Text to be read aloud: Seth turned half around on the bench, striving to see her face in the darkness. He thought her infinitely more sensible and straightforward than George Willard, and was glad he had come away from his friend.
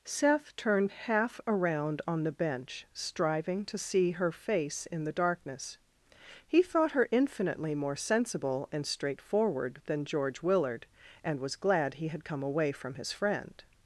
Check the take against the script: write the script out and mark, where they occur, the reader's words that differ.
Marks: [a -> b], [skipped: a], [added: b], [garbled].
Seth turned half around on the bench, striving to see her face in the darkness. He thought her infinitely more sensible and straightforward than George Willard, and was glad he had come away from his friend.